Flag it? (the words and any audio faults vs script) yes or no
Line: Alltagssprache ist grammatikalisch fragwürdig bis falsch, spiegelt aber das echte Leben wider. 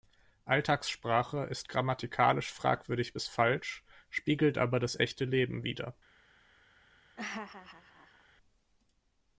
yes